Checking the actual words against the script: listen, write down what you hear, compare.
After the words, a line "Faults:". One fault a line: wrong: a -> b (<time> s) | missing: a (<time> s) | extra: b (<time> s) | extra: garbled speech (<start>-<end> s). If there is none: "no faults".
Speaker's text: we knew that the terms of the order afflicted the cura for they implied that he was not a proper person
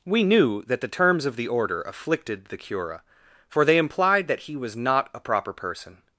we knew that the terms of the order afflicted the cura for they implied that he was not a proper person
Faults:
no faults